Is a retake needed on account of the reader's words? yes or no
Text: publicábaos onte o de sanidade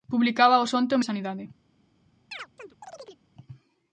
no